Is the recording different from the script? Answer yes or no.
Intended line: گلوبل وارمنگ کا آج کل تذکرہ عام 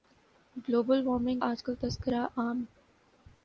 yes